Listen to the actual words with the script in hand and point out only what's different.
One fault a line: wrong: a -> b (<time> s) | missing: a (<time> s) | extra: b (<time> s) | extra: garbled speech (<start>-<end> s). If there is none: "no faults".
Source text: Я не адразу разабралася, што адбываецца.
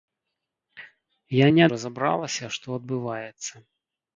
missing: адразу (1.6 s)